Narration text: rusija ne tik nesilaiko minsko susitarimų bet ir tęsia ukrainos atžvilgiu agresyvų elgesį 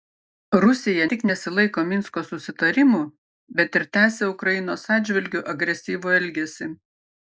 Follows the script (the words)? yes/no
no